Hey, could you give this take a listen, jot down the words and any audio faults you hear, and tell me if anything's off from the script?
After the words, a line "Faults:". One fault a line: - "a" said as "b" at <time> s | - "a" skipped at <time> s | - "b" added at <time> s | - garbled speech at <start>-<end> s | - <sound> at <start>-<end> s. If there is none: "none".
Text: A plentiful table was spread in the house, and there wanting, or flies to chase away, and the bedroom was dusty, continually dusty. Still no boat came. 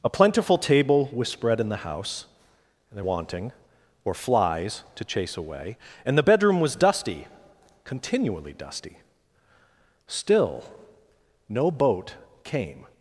A plentiful table was spread in the house, and there wanting, or flies to chase away, and the bedroom was dusty, continually dusty. Still no boat came.
Faults:
none